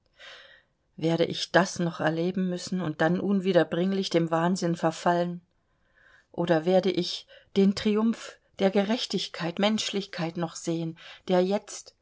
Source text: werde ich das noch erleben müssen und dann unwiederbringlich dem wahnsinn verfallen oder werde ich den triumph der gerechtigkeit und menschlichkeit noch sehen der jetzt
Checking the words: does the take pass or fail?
fail